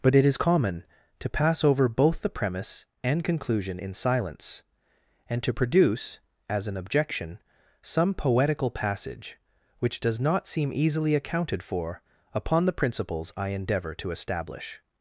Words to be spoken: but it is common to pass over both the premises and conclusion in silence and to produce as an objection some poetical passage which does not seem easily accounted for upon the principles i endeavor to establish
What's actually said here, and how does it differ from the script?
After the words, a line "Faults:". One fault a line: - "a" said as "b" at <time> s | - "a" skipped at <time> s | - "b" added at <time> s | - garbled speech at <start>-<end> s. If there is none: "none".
but it is common to pass over both the premise and conclusion in silence and to produce as an objection some poetical passage which does not seem easily accounted for upon the principles i endeavor to establish
Faults:
- "premises" said as "premise" at 2.3 s